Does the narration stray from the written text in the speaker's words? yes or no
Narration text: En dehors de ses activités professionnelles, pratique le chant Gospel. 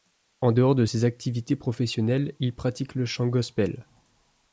yes